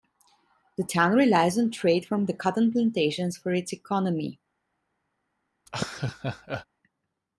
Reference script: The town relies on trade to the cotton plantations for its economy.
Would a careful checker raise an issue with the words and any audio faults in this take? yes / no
yes